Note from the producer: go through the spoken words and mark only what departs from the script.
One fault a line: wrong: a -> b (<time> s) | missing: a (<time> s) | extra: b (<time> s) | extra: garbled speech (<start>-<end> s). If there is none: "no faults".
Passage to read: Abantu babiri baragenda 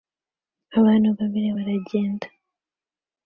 no faults